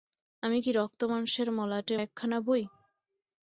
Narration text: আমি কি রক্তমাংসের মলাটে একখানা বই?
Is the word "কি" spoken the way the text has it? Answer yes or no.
yes